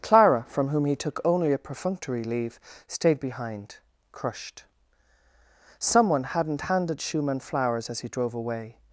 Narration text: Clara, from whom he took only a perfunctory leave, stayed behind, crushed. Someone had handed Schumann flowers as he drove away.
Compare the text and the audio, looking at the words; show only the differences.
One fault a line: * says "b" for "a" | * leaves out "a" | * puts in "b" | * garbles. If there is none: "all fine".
* says "hadn't" for "had"